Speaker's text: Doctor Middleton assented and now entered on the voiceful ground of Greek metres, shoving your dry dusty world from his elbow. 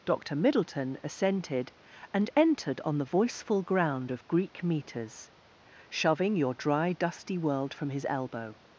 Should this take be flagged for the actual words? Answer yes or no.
yes